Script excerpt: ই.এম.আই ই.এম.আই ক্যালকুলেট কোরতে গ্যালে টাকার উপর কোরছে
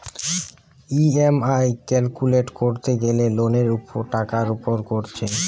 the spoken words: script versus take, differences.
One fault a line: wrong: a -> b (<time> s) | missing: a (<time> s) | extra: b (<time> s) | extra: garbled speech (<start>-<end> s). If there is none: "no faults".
missing: ই.এম.আই (1.7 s)
extra: লোনের (3.4 s)